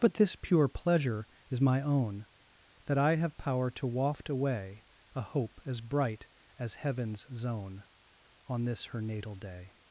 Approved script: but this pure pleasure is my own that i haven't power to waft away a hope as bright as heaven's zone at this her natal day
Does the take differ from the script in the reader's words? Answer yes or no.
yes